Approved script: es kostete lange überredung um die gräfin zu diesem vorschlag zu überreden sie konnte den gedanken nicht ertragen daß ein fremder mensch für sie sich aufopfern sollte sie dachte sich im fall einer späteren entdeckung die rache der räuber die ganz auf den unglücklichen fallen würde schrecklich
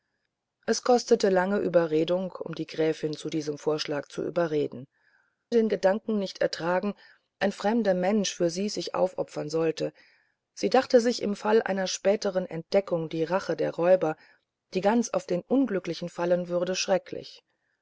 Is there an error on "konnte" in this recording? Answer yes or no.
yes